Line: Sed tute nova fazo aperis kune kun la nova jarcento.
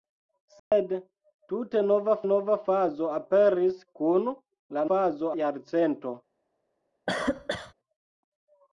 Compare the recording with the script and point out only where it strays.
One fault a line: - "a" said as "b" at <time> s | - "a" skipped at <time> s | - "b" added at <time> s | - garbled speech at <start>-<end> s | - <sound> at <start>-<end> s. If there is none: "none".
- dropout at 0.6-0.7 s
- "nova" added at 2.3 s
- "kune" skipped at 3.8 s
- "nova" said as "fazo" at 4.9 s
- cough at 7.1-7.7 s